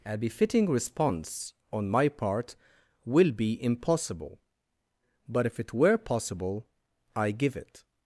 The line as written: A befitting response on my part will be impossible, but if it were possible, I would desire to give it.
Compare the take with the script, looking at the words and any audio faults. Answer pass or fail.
fail